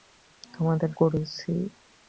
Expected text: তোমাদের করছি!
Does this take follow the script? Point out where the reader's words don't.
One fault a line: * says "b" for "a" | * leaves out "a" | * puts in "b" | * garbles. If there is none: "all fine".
all fine